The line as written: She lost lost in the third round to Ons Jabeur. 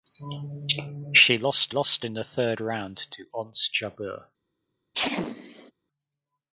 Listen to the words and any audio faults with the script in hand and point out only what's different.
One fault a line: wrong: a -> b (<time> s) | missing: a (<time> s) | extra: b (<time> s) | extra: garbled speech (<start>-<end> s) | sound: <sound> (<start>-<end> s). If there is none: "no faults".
sound: sneeze (4.9-5.7 s)